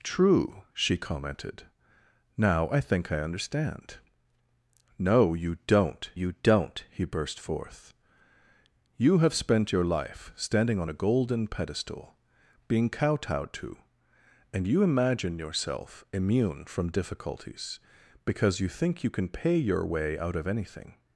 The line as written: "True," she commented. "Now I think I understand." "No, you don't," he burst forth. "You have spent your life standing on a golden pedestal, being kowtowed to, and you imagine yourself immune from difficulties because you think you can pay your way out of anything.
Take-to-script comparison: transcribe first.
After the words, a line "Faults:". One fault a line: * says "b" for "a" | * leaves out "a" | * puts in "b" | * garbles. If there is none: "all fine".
"True," she commented. "Now I think I understand." "No, you don't you don't," he burst forth. "You have spent your life standing on a golden pedestal, being kowtowed to, and you imagine yourself immune from difficulties because you think you can pay your way out of anything.
Faults:
* puts in "you don't"